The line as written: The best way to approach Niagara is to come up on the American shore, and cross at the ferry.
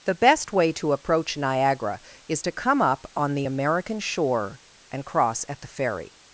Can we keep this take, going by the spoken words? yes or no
yes